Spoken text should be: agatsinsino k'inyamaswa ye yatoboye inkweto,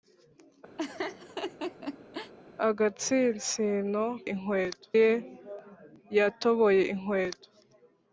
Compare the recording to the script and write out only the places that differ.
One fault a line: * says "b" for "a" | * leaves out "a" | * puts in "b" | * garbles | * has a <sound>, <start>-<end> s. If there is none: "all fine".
* has a laugh, 0.8-2.3 s
* says "inkweto" for "k'inyamaswa"